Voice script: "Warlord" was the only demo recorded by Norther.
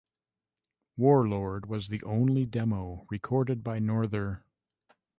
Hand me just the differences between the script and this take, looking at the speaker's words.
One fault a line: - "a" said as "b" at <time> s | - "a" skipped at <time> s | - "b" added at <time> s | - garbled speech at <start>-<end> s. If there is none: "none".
none